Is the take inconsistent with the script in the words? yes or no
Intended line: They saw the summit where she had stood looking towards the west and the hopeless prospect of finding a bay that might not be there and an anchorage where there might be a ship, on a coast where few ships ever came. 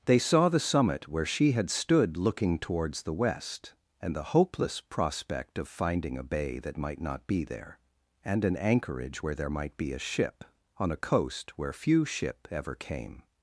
yes